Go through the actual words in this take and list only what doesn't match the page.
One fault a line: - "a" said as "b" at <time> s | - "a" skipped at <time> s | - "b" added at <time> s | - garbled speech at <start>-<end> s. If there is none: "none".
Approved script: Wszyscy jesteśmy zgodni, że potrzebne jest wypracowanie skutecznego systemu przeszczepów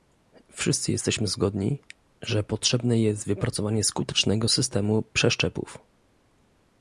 none